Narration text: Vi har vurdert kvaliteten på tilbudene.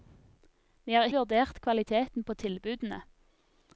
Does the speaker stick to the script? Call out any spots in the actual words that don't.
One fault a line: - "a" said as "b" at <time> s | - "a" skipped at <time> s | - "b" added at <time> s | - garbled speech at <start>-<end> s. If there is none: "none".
none